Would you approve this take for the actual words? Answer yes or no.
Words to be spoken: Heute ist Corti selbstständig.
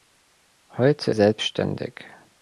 no